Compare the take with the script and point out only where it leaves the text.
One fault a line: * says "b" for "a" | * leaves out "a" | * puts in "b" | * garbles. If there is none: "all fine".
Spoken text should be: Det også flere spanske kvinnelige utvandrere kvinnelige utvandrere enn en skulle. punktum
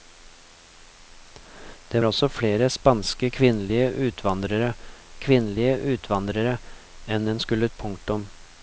all fine